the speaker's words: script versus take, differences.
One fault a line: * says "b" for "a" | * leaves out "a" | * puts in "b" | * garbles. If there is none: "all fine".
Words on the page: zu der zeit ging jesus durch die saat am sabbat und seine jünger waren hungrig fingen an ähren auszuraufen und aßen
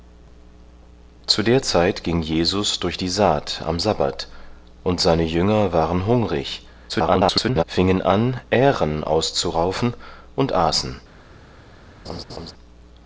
* garbles